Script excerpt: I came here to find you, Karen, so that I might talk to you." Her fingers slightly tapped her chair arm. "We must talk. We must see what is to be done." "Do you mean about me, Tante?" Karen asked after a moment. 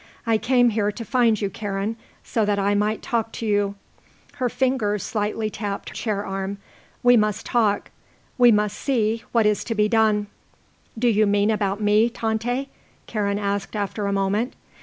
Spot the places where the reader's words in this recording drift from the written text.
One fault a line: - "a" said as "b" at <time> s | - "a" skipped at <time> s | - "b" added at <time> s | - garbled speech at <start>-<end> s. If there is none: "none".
- "her" skipped at 5.9 s